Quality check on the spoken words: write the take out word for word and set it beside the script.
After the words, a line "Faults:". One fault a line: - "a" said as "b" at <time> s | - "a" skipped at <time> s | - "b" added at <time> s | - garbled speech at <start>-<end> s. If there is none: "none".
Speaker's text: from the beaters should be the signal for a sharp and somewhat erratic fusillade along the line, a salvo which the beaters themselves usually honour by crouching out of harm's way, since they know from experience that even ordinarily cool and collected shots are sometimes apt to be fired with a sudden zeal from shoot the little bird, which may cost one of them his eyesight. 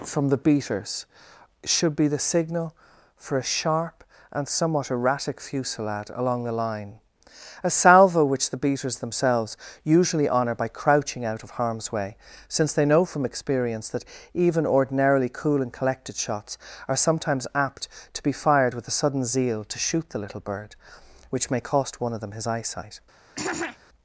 from the beaters should be the signal for a sharp and somewhat erratic fusillade along the line, a salvo which the beaters themselves usually honour by crouching out of harm's way, since they know from experience that even ordinarily cool and collected shots are sometimes apt to be fired with a sudden zeal to shoot the little bird, which may cost one of them his eyesight.
Faults:
- "from" said as "to" at 19.6 s